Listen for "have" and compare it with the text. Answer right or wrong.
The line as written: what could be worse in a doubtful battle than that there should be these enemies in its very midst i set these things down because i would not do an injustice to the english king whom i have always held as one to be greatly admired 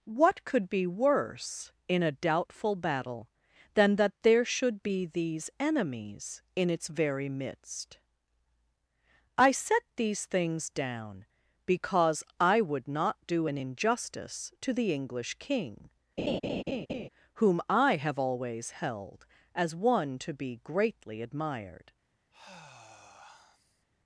right